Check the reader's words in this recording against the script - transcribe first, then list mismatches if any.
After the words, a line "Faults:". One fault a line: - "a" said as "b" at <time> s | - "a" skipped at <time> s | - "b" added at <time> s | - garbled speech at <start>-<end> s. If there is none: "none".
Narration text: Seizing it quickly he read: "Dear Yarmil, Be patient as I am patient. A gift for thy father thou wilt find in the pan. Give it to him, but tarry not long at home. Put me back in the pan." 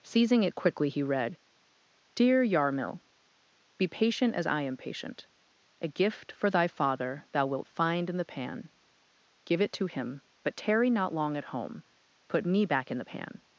Seizing it quickly he read: "Dear Yarmil, Be patient as I am patient. A gift for thy father thou wilt find in the pan. Give it to him, but tarry not long at home. Put me back in the pan."
Faults:
none